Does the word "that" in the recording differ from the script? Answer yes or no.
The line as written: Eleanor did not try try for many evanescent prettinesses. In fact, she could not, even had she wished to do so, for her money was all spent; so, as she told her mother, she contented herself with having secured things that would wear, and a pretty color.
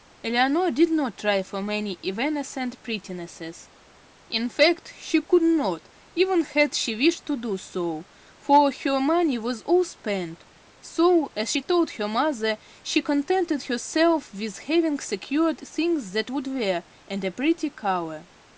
no